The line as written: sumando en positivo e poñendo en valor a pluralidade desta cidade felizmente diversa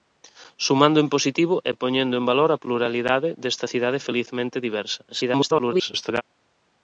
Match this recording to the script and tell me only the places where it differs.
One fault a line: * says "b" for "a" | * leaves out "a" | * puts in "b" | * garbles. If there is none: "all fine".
* garbles